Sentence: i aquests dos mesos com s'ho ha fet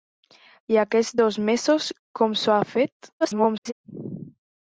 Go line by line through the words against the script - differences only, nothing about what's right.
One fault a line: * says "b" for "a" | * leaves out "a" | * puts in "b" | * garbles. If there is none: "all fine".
* garbles